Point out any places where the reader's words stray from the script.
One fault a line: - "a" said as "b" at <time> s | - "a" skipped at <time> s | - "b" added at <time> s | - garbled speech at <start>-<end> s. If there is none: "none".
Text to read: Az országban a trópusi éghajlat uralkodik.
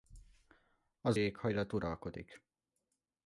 - "országban a trópusi" skipped at 1.2 s